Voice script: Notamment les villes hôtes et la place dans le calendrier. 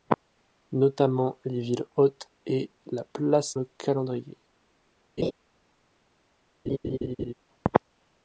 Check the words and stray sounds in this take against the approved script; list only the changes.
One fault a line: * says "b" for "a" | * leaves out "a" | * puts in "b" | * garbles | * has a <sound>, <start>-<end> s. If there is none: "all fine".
* leaves out "dans"
* has a laugh, 5.2-5.3 s
* has a laugh, 6.7-7.3 s